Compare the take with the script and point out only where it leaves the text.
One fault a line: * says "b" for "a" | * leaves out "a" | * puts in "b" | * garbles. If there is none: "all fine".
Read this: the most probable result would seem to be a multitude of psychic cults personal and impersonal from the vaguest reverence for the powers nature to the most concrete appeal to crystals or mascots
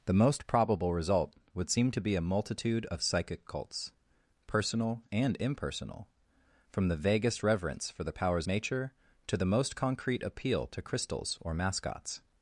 all fine